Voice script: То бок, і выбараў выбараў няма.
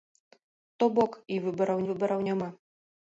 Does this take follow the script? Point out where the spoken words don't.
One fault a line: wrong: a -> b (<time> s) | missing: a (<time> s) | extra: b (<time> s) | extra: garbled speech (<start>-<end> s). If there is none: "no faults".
no faults